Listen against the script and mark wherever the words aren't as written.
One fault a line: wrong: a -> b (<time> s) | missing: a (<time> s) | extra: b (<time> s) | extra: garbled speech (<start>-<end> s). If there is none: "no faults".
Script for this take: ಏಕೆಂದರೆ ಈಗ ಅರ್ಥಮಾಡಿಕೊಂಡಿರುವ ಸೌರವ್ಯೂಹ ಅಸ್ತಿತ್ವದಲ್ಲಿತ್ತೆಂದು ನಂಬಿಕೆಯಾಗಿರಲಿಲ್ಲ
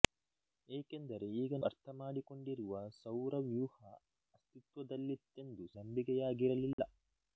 no faults